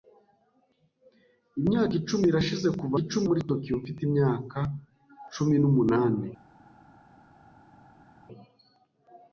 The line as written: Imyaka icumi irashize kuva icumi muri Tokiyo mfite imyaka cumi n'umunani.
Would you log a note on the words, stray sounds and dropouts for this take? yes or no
no